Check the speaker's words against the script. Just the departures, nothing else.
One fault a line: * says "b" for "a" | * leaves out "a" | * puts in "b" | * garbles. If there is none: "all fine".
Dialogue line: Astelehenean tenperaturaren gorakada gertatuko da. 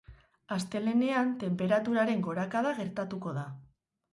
all fine